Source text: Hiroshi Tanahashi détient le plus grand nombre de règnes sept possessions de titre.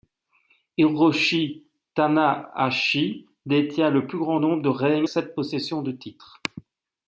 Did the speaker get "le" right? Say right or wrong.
right